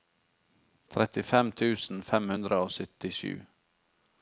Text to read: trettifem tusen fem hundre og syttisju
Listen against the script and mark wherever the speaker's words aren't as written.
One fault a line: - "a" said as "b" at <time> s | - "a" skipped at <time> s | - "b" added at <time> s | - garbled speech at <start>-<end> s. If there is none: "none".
none